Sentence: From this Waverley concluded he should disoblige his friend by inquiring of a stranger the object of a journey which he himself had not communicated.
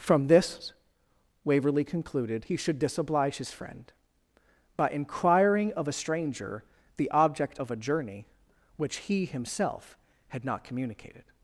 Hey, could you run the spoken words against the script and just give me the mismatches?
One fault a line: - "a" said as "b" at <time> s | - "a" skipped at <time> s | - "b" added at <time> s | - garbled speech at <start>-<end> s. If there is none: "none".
none